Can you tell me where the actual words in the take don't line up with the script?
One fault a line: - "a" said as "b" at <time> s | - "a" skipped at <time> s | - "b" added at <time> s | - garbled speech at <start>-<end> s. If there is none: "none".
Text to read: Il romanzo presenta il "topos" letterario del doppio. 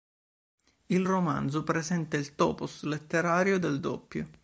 none